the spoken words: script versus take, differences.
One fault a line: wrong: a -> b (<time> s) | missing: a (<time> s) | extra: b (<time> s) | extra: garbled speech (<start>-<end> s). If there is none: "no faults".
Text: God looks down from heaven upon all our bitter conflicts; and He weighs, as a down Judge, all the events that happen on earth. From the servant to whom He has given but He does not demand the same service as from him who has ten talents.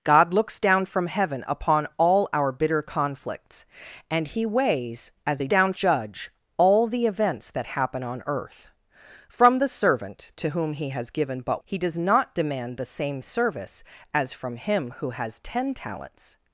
no faults